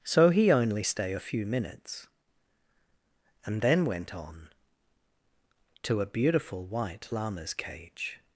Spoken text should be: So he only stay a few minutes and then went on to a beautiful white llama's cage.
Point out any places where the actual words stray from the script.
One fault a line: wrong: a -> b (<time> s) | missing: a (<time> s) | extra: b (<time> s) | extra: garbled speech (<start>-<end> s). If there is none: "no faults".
no faults